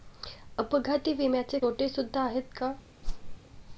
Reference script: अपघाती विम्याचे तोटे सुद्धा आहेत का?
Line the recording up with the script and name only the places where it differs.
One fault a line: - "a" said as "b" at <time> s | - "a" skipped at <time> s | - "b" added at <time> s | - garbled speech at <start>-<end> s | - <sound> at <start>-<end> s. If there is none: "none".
- whoosh at 3.0-3.4 s